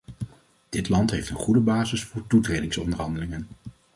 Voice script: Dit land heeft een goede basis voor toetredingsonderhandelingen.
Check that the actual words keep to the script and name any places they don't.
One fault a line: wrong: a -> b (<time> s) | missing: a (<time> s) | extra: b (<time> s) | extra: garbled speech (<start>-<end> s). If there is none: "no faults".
no faults